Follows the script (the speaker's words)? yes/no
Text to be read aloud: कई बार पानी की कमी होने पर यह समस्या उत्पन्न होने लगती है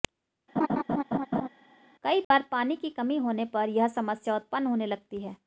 yes